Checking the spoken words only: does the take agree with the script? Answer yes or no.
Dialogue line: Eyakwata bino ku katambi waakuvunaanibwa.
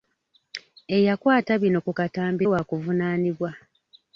yes